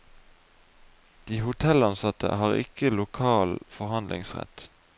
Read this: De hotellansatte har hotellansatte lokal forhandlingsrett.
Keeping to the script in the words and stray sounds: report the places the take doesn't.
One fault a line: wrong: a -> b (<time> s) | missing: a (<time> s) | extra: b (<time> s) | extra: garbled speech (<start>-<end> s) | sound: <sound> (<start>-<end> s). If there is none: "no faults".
wrong: hotellansatte -> ikke (2.6 s)